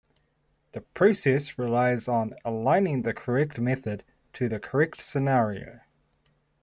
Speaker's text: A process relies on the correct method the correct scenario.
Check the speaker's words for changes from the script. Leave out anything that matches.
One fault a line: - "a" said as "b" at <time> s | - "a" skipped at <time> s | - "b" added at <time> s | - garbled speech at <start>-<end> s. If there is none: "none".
- "A" said as "The" at 0.7 s
- "aligning" added at 2.4 s
- "to" added at 4.3 s